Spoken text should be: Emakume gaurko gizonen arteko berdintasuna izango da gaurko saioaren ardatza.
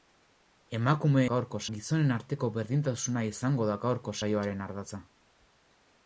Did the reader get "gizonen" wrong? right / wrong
right